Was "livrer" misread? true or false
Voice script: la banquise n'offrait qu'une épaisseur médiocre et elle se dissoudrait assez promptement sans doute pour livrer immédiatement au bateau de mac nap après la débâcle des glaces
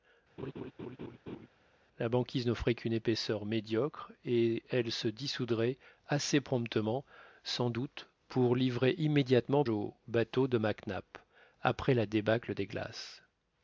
false